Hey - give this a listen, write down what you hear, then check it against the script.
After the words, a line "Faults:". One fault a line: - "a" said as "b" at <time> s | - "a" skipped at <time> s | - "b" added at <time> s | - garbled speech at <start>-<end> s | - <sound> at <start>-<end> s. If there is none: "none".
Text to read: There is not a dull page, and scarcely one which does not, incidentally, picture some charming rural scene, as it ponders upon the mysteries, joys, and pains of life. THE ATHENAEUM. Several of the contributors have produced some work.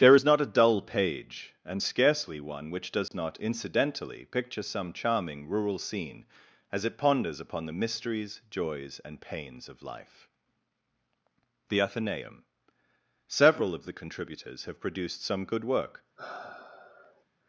There is not a dull page, and scarcely one which does not, incidentally, picture some charming rural scene, as it ponders upon the mysteries, joys, and pains of life. THE ATHENAEUM. Several of the contributors have produced some good work.
Faults:
- dropout at 3.1-3.1 s
- "good" added at 15.4 s
- sigh at 16.2-17.2 s